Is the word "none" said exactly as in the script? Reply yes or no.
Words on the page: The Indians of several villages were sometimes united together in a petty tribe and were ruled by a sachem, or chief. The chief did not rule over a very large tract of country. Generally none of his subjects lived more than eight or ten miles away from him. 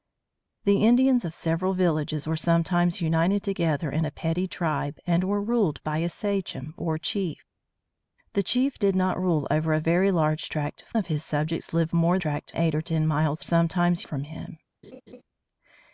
no